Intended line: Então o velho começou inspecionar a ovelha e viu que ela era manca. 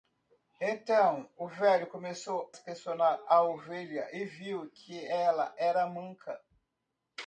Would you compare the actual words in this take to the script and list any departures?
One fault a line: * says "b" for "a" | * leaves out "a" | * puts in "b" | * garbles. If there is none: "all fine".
all fine